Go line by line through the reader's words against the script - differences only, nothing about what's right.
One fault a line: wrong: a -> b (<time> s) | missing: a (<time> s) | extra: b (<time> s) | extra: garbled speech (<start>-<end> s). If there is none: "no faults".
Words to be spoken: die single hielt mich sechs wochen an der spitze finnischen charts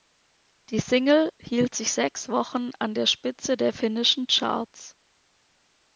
wrong: mich -> sich (1.8 s)
extra: der (3.5 s)